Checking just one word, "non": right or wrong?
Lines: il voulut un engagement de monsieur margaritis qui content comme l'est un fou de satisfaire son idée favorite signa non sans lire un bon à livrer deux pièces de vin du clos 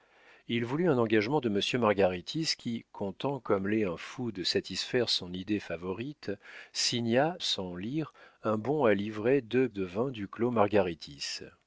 wrong